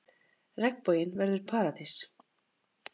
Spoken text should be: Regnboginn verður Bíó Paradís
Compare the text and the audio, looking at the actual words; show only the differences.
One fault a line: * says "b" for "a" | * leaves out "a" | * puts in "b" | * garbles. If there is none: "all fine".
* leaves out "Bíó"